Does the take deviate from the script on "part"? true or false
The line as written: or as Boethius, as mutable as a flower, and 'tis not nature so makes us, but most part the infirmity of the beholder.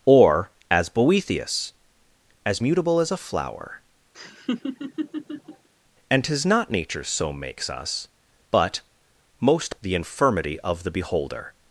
true